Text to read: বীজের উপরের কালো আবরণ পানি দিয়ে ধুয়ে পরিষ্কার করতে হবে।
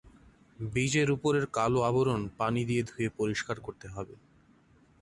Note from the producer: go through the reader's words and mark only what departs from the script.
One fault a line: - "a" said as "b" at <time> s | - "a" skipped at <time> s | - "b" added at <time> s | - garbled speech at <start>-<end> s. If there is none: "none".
none